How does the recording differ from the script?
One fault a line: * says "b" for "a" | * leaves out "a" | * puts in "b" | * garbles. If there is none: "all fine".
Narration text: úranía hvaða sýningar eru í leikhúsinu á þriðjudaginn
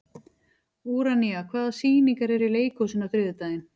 all fine